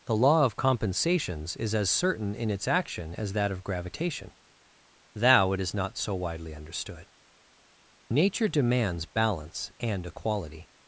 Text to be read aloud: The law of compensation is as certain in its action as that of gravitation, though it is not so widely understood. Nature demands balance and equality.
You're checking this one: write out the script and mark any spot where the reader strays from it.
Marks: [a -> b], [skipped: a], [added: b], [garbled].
The law of [compensation -> compensations] is as certain in its action as that of gravitation, [though -> thou] it is not so widely understood. Nature demands balance and equality.